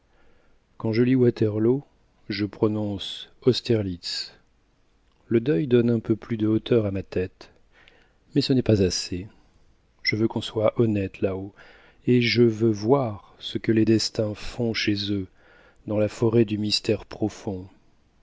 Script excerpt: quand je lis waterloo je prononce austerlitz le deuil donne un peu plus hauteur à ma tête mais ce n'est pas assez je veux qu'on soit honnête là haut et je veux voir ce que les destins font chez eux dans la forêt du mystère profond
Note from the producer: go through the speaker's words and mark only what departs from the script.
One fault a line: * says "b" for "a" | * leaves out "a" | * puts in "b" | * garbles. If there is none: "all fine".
* puts in "de"